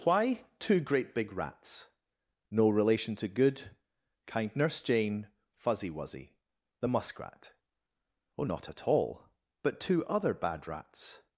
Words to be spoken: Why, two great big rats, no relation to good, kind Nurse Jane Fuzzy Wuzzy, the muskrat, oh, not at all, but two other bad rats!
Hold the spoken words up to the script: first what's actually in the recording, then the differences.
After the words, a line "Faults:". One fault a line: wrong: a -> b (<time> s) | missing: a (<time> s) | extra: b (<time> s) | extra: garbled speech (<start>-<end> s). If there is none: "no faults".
Why, two great big rats, no relation to good, kind Nurse Jane Fuzzy Wuzzy, the muskrat, oh, not at all, but two other bad rats!
Faults:
no faults